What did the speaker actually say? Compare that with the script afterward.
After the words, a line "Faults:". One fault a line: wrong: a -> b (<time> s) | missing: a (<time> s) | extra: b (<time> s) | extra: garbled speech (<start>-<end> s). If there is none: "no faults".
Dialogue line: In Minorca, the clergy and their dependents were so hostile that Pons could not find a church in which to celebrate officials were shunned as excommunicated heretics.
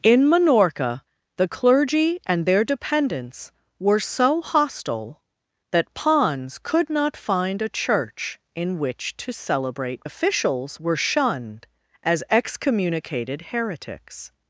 In Minorca, the clergy and their dependents were so hostile that Pons could not find a church in which to celebrate officials were shunned as excommunicated heretics.
Faults:
no faults